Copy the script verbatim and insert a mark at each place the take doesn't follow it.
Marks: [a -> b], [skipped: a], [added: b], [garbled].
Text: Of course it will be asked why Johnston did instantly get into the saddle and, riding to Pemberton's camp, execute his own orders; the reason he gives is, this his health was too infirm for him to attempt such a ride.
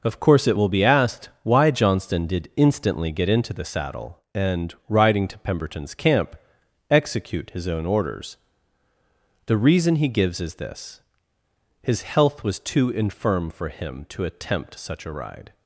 Of course it will be asked why Johnston did instantly get into the saddle and, riding to Pemberton's camp, execute his own orders; the reason he gives is, this his health was too infirm for him to attempt such a ride.